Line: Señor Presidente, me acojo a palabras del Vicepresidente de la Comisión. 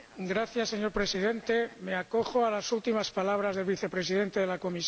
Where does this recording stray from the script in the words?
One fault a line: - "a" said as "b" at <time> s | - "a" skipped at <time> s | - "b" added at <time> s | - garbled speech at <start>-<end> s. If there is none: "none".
- "las últimas" added at 2.5 s